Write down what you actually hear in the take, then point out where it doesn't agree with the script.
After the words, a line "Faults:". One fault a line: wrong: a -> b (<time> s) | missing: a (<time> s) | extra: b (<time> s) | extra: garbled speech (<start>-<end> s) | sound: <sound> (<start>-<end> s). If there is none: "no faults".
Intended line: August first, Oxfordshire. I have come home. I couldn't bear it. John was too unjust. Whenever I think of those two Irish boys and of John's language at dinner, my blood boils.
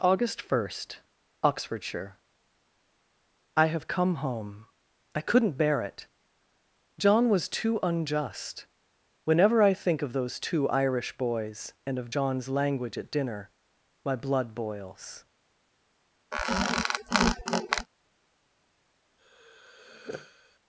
August first, Oxfordshire. I have come home. I couldn't bear it. John was too unjust. Whenever I think of those two Irish boys and of John's language at dinner, my blood boils.
Faults:
sound: squeak (16.3-17.9 s)
sound: sigh (19.2-20.6 s)